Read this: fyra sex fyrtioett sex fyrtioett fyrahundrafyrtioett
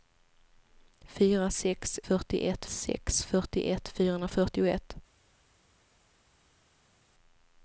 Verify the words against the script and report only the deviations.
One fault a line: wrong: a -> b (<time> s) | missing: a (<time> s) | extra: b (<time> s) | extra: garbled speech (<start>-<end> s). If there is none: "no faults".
no faults